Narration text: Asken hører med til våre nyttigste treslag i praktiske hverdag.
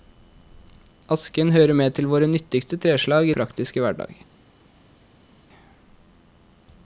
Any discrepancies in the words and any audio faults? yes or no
no